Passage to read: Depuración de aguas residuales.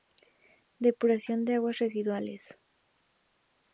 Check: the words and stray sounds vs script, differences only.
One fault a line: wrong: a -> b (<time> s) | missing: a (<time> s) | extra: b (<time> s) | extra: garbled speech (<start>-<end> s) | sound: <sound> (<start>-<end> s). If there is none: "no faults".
no faults